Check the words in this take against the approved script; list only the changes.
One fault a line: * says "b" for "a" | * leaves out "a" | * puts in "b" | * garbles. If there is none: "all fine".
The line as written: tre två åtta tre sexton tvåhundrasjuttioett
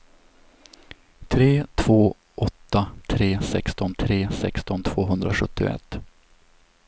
* puts in "tre sexton"